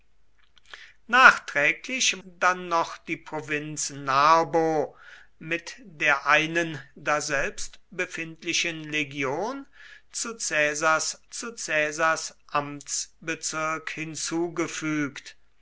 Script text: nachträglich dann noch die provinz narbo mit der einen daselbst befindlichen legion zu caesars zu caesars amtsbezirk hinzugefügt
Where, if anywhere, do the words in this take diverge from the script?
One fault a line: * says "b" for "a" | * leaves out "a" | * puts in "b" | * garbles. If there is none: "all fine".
all fine